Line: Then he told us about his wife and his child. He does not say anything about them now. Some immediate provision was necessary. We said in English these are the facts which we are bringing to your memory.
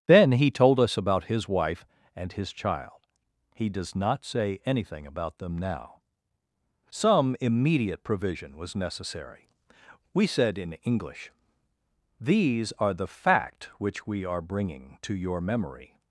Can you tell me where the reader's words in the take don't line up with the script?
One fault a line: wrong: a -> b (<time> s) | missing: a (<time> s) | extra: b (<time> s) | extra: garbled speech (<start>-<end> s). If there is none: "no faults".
wrong: facts -> fact (13.1 s)